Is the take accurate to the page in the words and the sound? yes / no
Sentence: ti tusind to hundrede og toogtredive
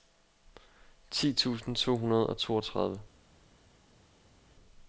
yes